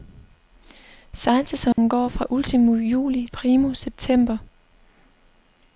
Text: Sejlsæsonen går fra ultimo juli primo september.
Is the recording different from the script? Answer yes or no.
no